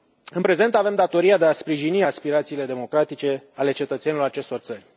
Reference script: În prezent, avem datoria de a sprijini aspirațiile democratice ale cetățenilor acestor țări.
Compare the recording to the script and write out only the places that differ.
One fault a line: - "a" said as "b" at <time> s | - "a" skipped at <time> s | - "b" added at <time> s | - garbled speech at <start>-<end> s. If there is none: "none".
none